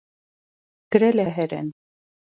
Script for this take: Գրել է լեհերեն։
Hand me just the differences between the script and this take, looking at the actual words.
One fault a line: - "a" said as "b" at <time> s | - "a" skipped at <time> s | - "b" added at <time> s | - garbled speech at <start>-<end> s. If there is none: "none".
none